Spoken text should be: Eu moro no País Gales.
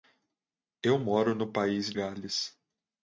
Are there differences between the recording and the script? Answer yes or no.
no